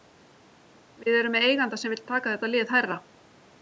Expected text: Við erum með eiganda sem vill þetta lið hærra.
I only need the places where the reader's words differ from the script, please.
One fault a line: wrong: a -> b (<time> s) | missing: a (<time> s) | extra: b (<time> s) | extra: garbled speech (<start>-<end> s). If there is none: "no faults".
extra: taka (2.1 s)